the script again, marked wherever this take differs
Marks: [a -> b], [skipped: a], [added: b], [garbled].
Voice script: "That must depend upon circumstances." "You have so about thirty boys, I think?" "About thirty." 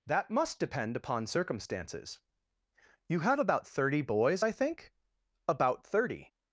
"That must depend upon circumstances." "You have [skipped: so] about thirty boys, I think?" "About thirty."